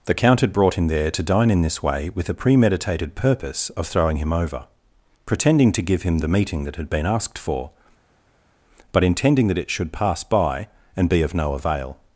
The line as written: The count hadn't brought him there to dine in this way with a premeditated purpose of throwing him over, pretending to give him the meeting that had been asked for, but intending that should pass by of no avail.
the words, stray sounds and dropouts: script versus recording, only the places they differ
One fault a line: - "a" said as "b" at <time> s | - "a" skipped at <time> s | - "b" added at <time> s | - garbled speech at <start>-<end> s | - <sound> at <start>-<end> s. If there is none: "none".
- "hadn't" said as "had" at 0.4 s
- "it" added at 9.6 s
- "and be" added at 11.0 s